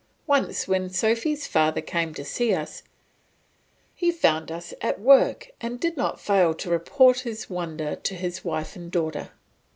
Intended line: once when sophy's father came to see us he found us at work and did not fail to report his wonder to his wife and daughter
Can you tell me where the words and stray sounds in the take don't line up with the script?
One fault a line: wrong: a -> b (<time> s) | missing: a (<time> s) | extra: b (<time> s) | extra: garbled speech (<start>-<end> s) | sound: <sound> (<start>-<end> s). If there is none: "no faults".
no faults